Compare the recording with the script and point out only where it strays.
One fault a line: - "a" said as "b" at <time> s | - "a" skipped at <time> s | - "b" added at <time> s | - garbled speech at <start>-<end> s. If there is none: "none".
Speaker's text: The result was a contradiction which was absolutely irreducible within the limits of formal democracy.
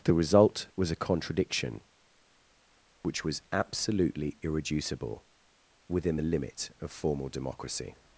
- "limits" said as "limit" at 6.2 s